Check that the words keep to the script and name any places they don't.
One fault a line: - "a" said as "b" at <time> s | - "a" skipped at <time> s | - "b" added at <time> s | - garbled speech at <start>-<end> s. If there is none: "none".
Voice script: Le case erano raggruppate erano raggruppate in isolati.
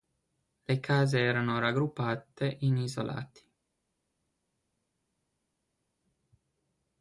- "erano raggruppate" skipped at 2.6 s